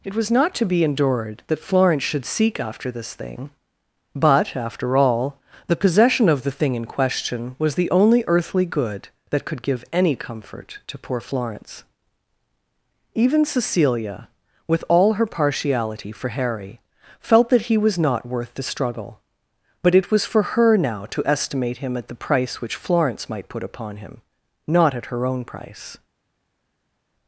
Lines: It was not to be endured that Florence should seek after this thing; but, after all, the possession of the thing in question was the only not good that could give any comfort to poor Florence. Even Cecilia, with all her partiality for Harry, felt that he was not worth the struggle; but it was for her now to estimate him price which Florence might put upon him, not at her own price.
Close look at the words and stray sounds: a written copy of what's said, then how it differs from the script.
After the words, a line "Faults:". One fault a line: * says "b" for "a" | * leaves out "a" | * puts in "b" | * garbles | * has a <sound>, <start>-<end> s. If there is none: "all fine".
It was not to be endured that Florence should seek after this thing; but, after all, the possession of the thing in question was the only earthly good that could give any comfort to poor Florence. Even Cecilia, with all her partiality for Harry, felt that he was not worth the struggle; but it was for her now to estimate him at the price which Florence might put upon him, not at her own price.
Faults:
* says "earthly" for "not"
* puts in "at the"